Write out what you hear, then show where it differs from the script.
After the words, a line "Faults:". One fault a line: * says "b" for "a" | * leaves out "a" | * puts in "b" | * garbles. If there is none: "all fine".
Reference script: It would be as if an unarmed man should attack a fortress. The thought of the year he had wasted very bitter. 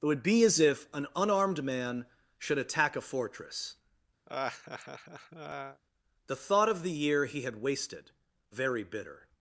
It would be as if an unarmed man should attack a fortress. The thought of the year he had wasted very bitter.
Faults:
all fine